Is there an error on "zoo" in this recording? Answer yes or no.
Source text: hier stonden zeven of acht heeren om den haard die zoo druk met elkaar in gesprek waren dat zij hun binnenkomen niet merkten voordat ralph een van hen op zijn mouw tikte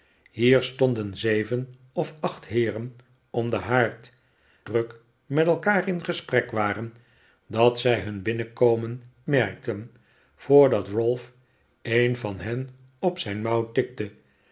yes